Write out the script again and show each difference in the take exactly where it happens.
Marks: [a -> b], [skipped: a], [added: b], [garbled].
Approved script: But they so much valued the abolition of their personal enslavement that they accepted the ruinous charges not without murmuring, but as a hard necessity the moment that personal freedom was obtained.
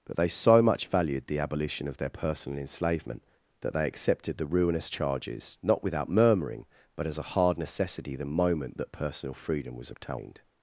But they so much valued the abolition of their personal enslavement that they accepted the ruinous charges not without murmuring, but as a hard necessity the moment that personal freedom was obtained.